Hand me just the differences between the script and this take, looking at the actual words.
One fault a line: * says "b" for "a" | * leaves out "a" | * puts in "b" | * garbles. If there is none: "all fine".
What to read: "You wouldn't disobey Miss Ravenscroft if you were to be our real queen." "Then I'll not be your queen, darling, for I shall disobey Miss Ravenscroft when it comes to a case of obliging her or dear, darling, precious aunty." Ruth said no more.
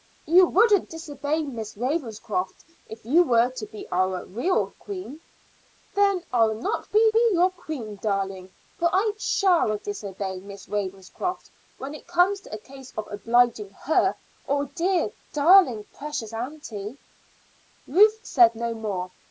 * puts in "be"